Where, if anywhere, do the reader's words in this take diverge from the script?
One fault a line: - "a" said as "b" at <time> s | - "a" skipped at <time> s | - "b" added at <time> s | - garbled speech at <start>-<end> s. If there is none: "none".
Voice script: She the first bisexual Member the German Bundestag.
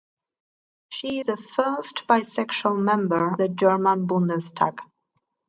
none